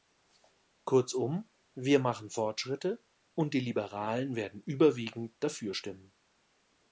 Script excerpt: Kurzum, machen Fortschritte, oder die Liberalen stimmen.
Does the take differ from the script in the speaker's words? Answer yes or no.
yes